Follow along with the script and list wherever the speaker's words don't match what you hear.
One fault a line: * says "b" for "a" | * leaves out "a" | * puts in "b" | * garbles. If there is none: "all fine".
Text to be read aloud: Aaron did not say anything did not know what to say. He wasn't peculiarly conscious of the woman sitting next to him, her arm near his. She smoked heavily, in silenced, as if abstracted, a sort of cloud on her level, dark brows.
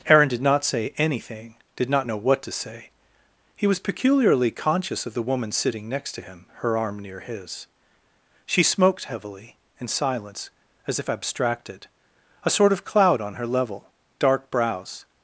* says "was" for "wasn't"
* says "silence" for "silenced"